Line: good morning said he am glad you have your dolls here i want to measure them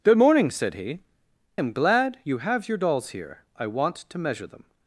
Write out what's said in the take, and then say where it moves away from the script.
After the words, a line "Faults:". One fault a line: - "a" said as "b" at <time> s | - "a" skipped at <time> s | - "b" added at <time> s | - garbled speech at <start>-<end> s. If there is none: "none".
good morning said he am glad you have your dolls here i want to measure them
Faults:
none